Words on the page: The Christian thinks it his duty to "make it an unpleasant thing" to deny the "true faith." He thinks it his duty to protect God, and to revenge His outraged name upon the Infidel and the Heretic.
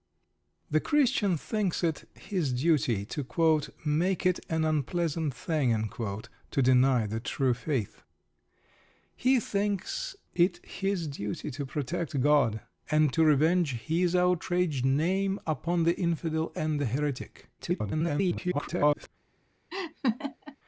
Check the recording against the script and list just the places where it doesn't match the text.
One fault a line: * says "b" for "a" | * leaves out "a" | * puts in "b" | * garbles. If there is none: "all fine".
* garbles